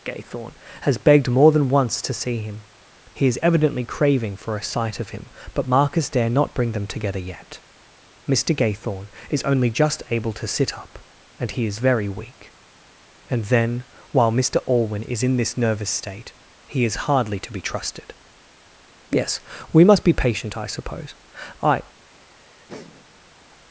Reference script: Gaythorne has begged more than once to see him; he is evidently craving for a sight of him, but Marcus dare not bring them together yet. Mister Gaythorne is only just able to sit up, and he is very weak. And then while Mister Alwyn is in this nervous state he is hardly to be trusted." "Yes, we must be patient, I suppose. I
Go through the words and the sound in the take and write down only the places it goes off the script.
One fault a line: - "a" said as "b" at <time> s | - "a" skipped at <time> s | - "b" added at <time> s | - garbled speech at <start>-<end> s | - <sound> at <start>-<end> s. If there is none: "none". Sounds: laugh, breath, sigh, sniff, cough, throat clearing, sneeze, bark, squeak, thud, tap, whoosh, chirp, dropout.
- laugh at 22.1-23.3 s